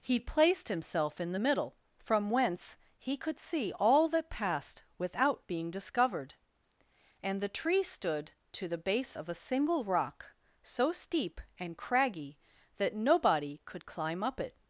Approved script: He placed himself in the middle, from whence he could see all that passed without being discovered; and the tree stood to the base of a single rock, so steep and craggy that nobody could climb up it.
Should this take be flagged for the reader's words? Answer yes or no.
no